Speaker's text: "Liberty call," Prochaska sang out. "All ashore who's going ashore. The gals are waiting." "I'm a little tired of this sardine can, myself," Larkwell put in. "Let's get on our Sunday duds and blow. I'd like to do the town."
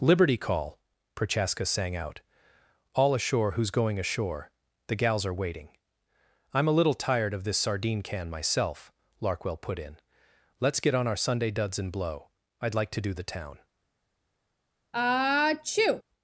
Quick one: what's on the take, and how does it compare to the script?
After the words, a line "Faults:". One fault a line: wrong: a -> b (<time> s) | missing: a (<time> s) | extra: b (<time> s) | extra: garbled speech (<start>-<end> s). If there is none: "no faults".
"Liberty call," Prochaska sang out. "All ashore who's going ashore. The gals are waiting." "I'm a little tired of this sardine can, myself," Larkwell put in. "Let's get on our Sunday duds and blow. I'd like to do the town."
Faults:
no faults